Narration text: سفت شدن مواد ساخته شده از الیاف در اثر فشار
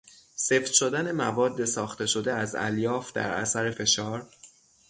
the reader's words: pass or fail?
pass